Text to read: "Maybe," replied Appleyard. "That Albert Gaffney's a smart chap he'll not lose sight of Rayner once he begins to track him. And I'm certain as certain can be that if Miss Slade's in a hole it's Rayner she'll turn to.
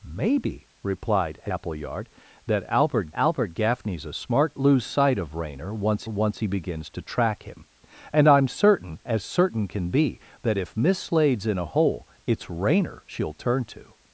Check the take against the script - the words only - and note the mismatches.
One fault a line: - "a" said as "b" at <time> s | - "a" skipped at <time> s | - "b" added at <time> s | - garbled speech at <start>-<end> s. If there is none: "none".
- "Albert" added at 3.1 s
- "chap he'll not" skipped at 4.6 s
- "once" added at 6.1 s